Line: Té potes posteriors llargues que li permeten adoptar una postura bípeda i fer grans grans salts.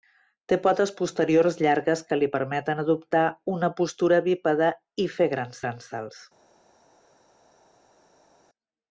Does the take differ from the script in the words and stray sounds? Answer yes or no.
no